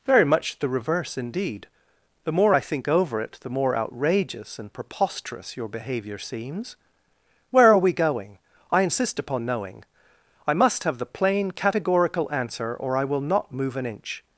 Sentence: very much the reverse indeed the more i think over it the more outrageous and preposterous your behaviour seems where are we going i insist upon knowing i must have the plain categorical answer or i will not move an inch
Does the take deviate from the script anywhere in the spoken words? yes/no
no